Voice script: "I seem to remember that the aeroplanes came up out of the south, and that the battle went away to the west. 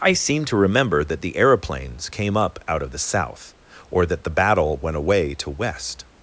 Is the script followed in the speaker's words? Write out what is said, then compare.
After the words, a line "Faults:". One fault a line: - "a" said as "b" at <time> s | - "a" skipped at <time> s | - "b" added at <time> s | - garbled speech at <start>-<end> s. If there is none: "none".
"I seem to remember that the aeroplanes came up out of the south, or that the battle went away to west.
Faults:
- "and" said as "or" at 3.9 s
- "the" skipped at 5.5 s